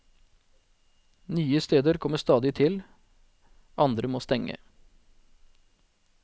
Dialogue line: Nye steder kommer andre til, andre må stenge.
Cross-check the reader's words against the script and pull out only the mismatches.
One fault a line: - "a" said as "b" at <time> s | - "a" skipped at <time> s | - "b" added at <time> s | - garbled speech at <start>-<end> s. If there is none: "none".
- "andre" said as "stadig" at 2.2 s